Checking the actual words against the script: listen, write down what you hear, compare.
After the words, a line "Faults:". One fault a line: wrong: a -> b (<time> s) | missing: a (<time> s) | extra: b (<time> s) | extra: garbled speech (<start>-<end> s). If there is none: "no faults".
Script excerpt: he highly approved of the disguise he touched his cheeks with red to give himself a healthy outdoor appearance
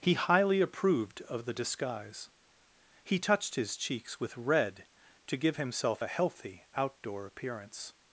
he highly approved of the disguise he touched his cheeks with red to give himself a healthy outdoor appearance
Faults:
no faults